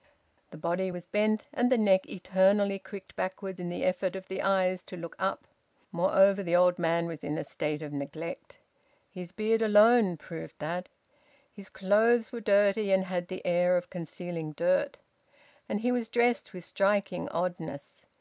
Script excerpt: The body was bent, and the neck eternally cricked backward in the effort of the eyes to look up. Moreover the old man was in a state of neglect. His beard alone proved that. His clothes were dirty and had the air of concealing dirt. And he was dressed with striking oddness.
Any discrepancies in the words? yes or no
no